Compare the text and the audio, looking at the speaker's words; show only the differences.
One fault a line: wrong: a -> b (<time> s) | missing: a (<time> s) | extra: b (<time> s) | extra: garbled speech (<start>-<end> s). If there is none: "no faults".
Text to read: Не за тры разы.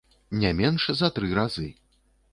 extra: менш (0.6 s)